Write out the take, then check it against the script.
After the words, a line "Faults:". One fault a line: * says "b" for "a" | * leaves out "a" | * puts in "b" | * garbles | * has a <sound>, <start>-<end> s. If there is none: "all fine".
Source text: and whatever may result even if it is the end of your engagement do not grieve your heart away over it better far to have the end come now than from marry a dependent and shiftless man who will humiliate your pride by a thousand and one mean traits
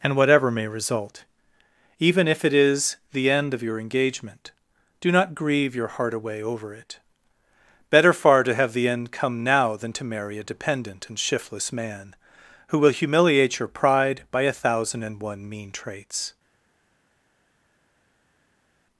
and whatever may result even if it is the end of your engagement do not grieve your heart away over it better far to have the end come now than to marry a dependent and shiftless man who will humiliate your pride by a thousand and one mean traits
Faults:
* says "to" for "from"